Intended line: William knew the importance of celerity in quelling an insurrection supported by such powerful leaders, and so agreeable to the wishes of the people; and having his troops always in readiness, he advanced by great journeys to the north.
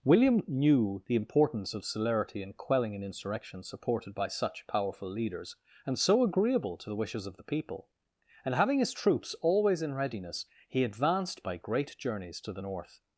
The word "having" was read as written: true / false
true